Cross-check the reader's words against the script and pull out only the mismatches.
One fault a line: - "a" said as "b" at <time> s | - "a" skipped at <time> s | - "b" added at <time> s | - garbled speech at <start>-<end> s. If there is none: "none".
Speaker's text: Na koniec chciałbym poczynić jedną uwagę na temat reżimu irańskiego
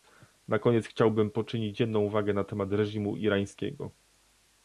none